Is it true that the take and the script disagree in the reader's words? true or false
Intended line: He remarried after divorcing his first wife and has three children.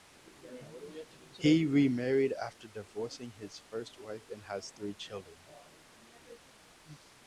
false